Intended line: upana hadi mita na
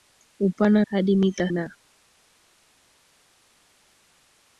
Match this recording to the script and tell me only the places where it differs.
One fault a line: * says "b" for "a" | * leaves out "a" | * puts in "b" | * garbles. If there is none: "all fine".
all fine